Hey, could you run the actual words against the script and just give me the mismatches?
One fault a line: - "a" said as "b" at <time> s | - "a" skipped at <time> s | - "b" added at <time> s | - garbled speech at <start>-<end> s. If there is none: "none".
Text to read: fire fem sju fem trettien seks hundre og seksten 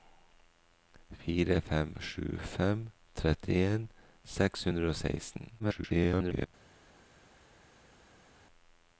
- garbled speech at 5.6-6.5 s